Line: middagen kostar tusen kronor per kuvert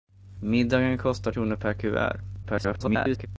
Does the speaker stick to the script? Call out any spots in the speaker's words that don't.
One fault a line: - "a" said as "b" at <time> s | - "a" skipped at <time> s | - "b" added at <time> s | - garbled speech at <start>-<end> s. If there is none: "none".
- "tusen" skipped at 1.3 s
- garbled speech at 2.4-3.3 s